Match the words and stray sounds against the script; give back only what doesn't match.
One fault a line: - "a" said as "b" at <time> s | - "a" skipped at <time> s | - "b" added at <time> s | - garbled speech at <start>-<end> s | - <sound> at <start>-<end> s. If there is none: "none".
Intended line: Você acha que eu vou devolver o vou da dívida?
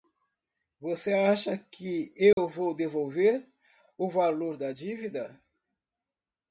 - dropout at 2.3-2.4 s
- "vou" said as "valor" at 4.1 s